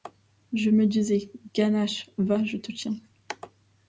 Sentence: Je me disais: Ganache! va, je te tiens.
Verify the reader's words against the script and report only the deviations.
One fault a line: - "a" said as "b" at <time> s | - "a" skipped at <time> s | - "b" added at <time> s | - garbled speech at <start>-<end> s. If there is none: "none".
none